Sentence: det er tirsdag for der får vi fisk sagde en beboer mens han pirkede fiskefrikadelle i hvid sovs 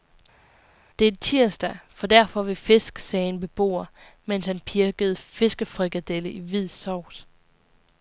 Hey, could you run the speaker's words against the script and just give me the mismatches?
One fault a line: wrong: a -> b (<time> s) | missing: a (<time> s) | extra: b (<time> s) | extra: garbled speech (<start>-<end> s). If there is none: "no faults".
no faults